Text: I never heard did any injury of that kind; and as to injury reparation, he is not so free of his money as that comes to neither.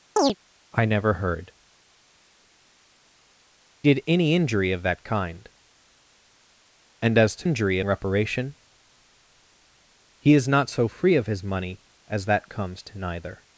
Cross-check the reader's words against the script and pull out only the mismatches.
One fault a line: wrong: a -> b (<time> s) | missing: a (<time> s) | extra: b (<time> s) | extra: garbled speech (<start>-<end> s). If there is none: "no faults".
no faults